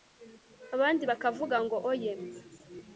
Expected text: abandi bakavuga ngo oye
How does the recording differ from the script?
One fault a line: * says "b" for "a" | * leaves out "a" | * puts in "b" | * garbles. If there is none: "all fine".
all fine